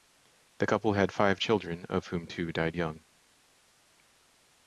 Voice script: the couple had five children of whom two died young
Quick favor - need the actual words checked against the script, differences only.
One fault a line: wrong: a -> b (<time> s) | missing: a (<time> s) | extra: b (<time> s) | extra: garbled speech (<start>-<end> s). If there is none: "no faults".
no faults